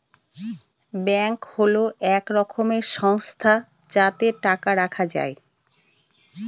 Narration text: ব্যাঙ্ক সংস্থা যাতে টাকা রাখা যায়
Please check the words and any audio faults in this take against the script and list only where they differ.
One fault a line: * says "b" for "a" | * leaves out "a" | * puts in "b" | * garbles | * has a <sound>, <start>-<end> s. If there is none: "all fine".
* puts in "হল এক রকমের"